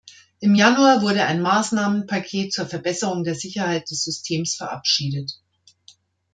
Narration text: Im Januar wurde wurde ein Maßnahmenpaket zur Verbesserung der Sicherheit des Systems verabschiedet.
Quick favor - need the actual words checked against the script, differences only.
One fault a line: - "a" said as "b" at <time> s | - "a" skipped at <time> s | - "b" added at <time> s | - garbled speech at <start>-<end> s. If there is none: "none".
- "wurde" skipped at 1.2 s